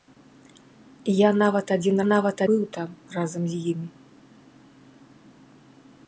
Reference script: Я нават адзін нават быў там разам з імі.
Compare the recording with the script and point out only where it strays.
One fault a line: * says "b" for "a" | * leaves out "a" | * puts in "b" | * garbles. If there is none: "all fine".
all fine